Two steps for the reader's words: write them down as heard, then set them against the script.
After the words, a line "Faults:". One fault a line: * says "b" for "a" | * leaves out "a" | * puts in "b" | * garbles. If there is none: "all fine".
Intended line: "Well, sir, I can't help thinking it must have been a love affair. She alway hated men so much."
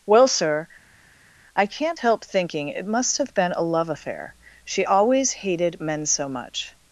"Well, sir, I can't help thinking it must have been a love affair. She always hated men so much."
Faults:
* says "always" for "alway"